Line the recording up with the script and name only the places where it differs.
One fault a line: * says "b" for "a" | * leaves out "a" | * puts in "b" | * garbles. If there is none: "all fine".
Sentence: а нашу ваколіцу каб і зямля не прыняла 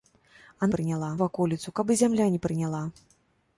* says "прыняла" for "нашу"